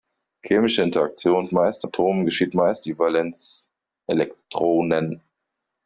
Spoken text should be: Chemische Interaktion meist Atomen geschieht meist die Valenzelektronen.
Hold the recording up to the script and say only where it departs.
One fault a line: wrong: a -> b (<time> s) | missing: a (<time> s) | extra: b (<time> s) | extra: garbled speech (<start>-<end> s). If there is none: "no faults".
no faults